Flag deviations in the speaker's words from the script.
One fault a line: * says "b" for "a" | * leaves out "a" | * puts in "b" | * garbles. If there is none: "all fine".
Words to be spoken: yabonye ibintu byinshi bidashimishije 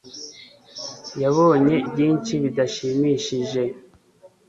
* leaves out "ibintu"